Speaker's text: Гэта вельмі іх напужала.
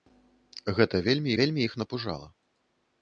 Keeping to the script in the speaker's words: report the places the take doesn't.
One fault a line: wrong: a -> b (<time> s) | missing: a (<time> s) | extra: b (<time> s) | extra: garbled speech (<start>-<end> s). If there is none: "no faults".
extra: вельмі (1.4 s)